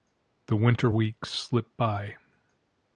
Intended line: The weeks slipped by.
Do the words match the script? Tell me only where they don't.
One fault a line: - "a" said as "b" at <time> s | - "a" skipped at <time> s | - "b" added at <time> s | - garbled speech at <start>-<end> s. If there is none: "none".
- "winter" added at 0.6 s